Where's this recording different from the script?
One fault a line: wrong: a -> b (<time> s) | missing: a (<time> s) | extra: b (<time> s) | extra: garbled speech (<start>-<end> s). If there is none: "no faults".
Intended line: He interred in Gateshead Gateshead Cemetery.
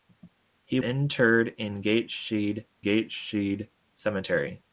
no faults